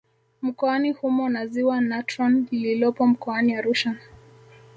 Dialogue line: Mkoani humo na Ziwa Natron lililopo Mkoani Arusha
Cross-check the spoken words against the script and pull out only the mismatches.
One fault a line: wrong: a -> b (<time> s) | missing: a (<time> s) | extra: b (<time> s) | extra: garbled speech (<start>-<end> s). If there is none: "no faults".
no faults